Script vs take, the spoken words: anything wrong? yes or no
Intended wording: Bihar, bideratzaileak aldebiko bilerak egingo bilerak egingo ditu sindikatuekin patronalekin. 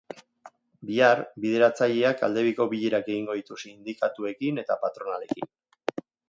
yes